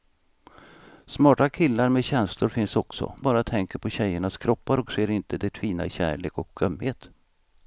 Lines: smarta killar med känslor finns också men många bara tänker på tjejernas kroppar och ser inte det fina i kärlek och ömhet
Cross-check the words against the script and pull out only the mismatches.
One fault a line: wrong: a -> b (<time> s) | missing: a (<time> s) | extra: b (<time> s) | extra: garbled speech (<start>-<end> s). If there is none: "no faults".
missing: men många (3.1 s)